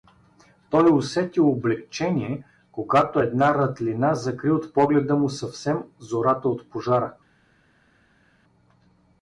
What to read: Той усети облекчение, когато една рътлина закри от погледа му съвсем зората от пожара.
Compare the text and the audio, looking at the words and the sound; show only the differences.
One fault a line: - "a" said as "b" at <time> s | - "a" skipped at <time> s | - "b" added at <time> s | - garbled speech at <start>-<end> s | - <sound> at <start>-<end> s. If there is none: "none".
none